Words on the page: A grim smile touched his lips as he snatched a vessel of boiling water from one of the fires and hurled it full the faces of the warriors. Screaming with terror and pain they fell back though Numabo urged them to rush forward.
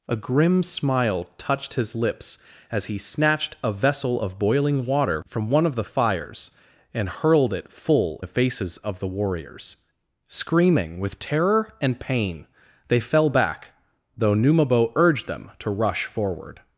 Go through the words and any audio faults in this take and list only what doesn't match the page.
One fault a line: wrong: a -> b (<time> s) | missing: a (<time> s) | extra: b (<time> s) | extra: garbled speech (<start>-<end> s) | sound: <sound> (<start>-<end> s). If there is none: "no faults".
no faults